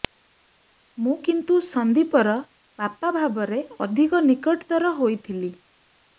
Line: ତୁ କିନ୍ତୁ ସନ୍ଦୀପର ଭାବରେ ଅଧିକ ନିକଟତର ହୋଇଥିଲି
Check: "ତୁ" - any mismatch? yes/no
yes